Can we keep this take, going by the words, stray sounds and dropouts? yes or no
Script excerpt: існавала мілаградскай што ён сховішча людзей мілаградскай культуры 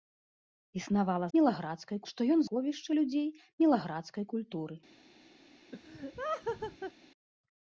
no